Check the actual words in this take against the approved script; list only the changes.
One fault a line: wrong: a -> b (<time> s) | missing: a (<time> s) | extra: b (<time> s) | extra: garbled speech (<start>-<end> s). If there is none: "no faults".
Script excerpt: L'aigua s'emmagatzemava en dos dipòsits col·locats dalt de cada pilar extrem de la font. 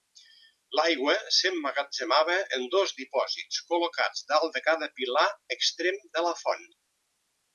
no faults